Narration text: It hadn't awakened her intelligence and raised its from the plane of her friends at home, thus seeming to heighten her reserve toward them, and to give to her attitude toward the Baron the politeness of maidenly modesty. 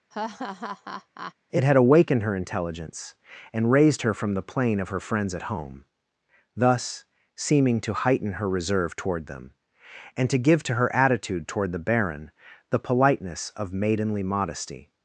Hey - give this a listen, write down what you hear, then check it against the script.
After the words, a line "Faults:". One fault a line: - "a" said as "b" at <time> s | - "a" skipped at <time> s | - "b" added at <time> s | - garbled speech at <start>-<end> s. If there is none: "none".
It had awakened her intelligence and raised her from the plane of her friends at home, thus seeming to heighten her reserve toward them, and to give to her attitude toward the Baron the politeness of maidenly modesty.
Faults:
- "hadn't" said as "had" at 1.6 s
- "its" said as "her" at 4.0 s